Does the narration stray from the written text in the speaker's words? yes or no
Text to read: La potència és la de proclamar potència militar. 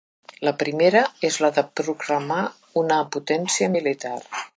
yes